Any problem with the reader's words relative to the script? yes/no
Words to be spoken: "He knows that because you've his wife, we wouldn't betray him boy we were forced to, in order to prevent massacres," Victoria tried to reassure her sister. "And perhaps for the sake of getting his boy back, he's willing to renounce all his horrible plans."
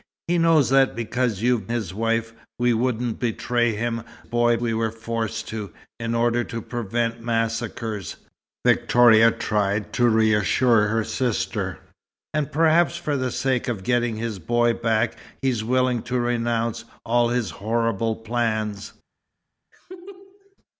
no